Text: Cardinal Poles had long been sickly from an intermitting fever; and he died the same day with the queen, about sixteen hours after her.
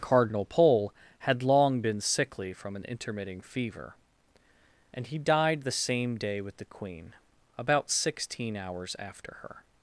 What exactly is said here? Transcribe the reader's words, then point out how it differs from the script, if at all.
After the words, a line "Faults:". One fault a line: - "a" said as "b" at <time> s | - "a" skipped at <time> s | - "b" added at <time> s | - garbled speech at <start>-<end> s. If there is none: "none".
Cardinal Pole had long been sickly from an intermitting fever; and he died the same day with the queen, about sixteen hours after her.
Faults:
- "Poles" said as "Pole" at 0.5 s